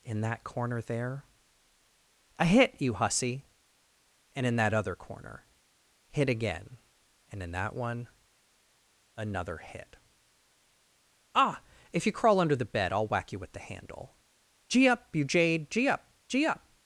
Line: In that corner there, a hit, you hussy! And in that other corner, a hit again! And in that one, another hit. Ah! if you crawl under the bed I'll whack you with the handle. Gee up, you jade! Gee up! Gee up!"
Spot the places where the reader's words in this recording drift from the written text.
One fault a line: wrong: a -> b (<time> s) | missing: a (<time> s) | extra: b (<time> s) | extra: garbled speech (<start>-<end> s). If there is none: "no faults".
missing: a (5.5 s)